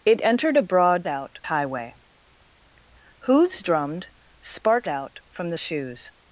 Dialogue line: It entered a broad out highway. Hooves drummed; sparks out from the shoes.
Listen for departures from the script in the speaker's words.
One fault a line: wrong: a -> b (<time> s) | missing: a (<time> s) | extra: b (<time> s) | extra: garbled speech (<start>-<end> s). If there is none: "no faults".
no faults